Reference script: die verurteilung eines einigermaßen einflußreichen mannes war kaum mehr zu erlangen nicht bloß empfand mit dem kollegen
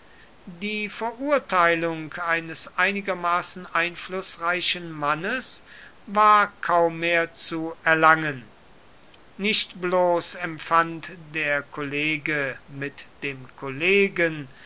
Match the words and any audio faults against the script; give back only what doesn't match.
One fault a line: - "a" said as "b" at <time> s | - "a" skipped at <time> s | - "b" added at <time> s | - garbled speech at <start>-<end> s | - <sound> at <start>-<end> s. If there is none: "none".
- "der kollege" added at 11.2 s